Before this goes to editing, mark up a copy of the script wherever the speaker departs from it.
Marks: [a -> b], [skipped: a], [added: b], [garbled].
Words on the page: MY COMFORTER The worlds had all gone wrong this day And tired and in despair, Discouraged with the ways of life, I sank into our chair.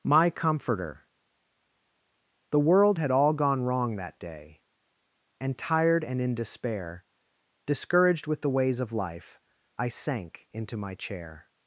MY COMFORTER The [worlds -> world] had all gone wrong [this -> that] day And tired and in despair, Discouraged with the ways of life, I sank into [our -> my] chair.